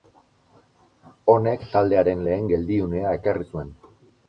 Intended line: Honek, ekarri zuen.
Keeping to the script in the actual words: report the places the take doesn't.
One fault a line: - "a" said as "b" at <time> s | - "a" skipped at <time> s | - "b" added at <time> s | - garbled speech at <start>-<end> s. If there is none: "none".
- "taldearen lehen geldiunea" added at 1.8 s